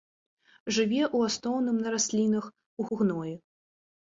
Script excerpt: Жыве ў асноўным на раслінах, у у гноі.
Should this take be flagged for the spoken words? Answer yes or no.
no